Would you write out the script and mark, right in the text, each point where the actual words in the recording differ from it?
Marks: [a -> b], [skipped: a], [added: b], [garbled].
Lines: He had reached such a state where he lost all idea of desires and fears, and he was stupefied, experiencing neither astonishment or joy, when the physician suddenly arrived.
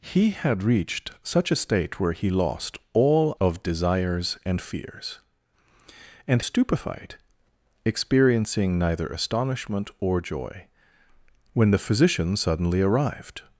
He had reached such a state where he lost all [skipped: idea] of desires and fears, and [skipped: he was] stupefied, experiencing neither astonishment or joy, when the physician suddenly arrived.